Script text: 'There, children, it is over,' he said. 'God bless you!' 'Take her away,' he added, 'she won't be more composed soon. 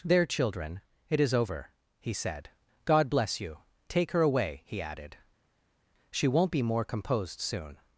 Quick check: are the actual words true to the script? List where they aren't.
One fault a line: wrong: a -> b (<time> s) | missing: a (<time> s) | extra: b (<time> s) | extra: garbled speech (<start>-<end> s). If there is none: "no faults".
no faults